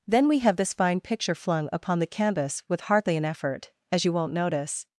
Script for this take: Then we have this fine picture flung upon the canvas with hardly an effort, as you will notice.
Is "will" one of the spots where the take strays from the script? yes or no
yes